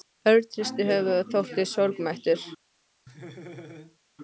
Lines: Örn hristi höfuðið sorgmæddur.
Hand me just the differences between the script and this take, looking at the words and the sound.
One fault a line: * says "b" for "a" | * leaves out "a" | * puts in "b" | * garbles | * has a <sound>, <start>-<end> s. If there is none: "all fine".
* puts in "og þóttist"
* has a laugh, 3.1-4.0 s